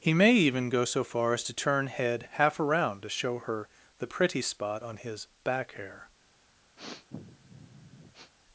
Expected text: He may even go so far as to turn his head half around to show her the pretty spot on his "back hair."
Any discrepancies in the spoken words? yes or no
yes